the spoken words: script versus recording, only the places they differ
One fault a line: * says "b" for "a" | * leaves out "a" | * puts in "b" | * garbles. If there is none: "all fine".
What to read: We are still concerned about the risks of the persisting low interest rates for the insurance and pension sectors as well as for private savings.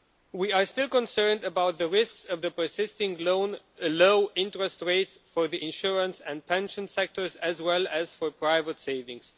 all fine